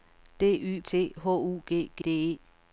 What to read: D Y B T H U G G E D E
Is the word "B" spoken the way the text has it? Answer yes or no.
no